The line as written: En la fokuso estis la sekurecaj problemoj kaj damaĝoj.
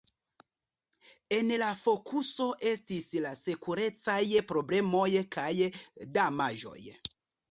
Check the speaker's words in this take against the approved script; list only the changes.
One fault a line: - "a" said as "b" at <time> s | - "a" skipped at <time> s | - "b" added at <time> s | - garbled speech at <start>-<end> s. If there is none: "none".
none